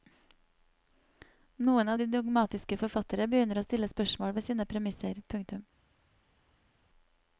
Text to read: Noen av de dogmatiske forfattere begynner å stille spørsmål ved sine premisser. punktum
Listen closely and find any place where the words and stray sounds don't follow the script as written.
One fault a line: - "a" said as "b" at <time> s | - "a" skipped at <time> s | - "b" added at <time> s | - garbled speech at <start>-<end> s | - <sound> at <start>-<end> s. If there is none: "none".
none